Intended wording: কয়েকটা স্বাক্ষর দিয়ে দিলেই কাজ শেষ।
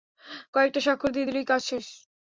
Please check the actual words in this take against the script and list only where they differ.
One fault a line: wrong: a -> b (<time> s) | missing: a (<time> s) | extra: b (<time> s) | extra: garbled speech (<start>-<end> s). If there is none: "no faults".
no faults